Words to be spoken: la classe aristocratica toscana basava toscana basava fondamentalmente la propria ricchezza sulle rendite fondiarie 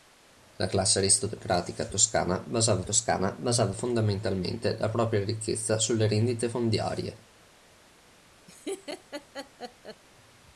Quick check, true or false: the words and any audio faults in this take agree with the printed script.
false